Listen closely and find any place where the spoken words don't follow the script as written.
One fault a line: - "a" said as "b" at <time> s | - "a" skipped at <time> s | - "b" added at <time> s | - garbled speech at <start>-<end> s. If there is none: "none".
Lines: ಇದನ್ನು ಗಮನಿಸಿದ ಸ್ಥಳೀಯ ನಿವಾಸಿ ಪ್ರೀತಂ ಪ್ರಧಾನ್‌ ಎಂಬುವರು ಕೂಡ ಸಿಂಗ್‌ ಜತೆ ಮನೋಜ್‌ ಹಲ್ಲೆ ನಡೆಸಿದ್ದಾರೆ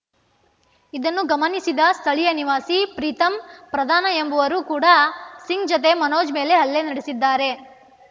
- "ಮೇಲೆ" added at 6.3 s